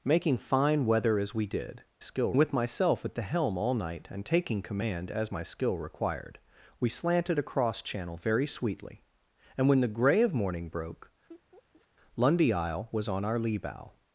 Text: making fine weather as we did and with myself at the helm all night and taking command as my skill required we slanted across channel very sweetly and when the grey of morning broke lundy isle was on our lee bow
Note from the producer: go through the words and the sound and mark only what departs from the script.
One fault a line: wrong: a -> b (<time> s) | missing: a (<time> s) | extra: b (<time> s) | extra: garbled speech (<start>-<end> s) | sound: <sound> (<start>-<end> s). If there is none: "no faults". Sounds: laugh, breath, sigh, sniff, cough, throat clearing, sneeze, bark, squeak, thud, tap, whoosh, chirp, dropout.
wrong: and -> skill (2.0 s)
sound: laugh (11.3-11.9 s)